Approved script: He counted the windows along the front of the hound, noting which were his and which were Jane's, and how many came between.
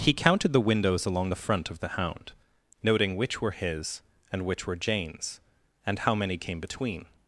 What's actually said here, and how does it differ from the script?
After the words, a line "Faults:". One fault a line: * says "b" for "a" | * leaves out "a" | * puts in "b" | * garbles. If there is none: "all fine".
He counted the windows along the front of the hound, noting which were his and which were Jane's, and how many came between.
Faults:
all fine